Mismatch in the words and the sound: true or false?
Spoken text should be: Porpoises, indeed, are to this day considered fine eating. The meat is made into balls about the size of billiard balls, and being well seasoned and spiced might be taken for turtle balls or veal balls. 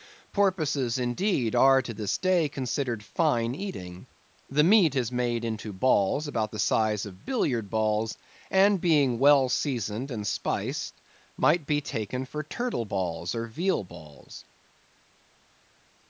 false